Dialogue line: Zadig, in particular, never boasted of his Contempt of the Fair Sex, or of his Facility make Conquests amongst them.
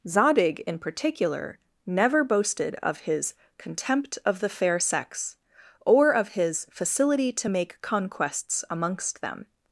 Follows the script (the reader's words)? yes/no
no